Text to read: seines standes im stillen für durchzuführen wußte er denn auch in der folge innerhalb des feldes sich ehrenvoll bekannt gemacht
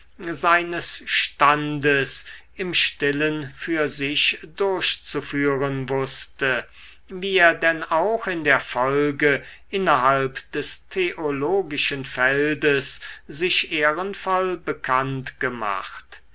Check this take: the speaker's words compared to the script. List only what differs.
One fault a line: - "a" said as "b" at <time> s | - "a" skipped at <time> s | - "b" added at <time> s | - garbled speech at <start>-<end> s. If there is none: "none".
- "sich" added at 3.9 s
- "wie" added at 7.1 s
- "theologischen" added at 10.9 s